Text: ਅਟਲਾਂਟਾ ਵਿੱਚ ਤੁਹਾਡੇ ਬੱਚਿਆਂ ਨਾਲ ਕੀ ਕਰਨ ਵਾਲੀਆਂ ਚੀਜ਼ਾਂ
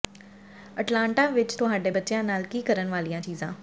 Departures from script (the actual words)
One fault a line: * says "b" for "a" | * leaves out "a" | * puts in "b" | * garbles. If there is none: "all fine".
all fine